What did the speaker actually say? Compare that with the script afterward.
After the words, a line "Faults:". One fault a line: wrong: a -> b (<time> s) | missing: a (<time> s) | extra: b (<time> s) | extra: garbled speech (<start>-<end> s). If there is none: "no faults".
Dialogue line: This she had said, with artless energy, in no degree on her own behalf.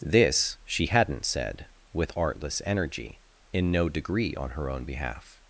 This she hadn't said, with artless energy, in no degree on her own behalf.
Faults:
wrong: had -> hadn't (0.9 s)